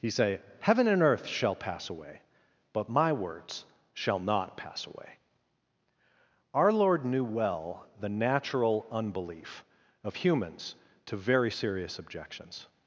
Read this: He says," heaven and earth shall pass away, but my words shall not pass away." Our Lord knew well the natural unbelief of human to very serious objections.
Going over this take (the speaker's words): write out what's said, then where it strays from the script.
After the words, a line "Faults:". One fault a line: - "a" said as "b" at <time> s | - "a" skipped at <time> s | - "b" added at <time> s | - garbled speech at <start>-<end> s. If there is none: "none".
He say," heaven and earth shall pass away, but my words shall not pass away." Our Lord knew well the natural unbelief of humans to very serious objections.
Faults:
- "says" said as "say" at 0.1 s
- "human" said as "humans" at 10.2 s